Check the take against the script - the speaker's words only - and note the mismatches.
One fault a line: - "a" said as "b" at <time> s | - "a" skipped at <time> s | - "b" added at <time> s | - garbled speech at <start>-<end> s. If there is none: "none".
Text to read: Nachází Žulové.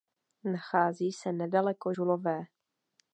- "se nedaleko" added at 1.1 s